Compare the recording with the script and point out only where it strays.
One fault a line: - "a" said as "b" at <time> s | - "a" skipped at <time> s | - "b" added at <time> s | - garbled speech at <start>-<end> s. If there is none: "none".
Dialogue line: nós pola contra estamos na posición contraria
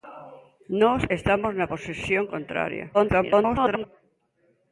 - "pola contra" skipped at 1.0 s
- garbled speech at 2.9-3.8 s